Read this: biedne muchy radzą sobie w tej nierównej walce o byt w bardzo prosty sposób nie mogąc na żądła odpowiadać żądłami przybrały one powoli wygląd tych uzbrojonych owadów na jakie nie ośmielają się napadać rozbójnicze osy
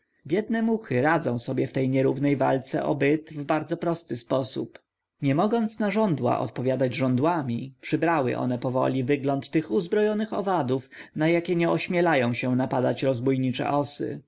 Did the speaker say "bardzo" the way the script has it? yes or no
yes